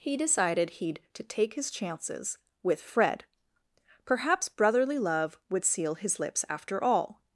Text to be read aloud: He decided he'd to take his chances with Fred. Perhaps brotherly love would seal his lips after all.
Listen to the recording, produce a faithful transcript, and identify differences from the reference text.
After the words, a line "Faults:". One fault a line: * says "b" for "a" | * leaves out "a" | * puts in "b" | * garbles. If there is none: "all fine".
He decided he'd to take his chances with Fred. Perhaps brotherly love would seal his lips after all.
Faults:
all fine